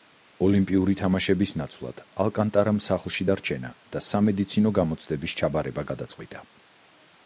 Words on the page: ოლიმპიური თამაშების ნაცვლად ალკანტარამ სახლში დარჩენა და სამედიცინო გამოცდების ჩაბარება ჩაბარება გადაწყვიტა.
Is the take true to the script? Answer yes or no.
no